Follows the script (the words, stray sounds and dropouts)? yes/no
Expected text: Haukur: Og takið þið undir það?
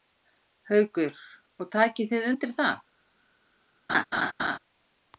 no